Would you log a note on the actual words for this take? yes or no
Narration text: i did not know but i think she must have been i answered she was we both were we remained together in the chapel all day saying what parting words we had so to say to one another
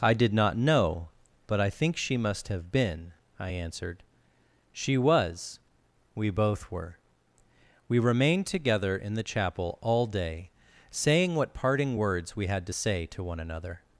yes